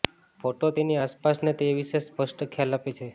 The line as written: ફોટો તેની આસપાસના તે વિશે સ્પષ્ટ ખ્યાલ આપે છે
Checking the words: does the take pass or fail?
pass